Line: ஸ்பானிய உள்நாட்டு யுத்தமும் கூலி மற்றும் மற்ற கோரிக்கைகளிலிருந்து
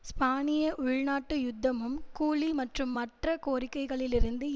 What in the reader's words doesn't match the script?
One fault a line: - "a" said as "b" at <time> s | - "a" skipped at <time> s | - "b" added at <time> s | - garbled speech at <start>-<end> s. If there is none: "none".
none